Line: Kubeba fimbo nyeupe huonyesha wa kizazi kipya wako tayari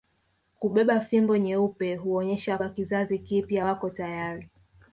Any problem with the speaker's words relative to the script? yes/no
no